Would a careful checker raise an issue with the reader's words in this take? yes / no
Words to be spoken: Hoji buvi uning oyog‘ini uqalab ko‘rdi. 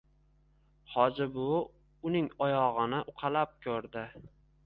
no